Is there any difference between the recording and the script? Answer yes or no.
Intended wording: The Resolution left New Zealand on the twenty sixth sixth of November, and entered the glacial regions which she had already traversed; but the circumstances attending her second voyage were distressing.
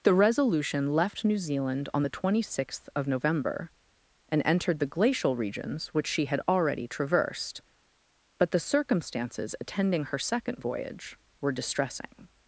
yes